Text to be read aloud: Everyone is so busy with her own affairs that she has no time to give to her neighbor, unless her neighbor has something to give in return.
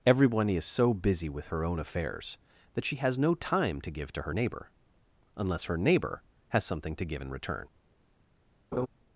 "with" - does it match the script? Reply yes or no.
yes